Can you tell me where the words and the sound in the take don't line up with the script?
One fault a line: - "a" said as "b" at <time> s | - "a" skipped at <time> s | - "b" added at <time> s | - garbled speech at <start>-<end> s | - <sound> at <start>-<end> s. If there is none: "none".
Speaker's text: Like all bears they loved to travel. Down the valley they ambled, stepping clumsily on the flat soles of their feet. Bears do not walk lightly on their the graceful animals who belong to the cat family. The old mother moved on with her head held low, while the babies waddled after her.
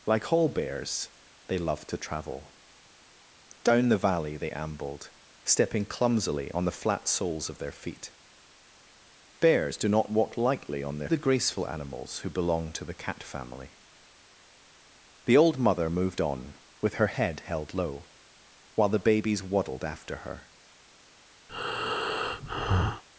- breath at 21.5-23.0 s